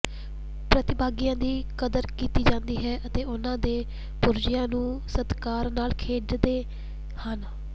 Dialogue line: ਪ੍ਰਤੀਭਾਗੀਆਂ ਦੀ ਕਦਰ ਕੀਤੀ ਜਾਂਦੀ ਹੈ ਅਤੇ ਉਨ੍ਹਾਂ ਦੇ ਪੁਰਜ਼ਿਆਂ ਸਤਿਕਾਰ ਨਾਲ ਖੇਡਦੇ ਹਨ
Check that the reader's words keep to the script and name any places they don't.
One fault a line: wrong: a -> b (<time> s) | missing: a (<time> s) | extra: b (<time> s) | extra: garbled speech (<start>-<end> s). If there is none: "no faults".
extra: ਨੂੰ (4.7 s)